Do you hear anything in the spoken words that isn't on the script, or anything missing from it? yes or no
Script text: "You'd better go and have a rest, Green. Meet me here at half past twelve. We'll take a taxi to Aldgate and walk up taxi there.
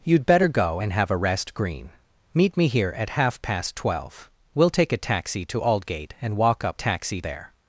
no